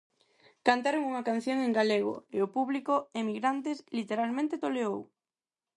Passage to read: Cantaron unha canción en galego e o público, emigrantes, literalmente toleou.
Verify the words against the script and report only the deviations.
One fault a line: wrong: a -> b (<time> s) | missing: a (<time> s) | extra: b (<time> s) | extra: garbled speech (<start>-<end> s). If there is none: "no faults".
no faults